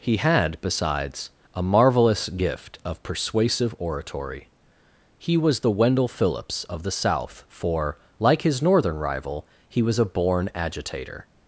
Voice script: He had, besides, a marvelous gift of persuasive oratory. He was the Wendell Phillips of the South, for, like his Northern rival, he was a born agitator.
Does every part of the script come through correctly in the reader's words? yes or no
yes